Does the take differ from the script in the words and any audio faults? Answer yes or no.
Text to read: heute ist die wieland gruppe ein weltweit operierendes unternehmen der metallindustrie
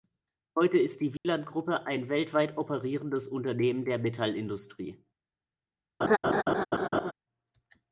yes